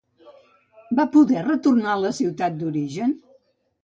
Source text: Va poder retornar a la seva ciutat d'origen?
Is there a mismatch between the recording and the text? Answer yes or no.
yes